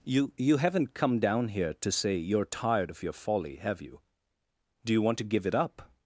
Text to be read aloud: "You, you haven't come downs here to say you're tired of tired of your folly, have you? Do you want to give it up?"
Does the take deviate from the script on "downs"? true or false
true